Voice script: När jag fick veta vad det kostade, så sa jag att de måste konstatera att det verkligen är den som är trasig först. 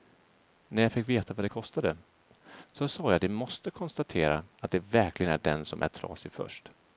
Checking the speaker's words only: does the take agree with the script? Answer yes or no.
yes